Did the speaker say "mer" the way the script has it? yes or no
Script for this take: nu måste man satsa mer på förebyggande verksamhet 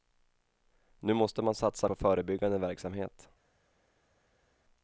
no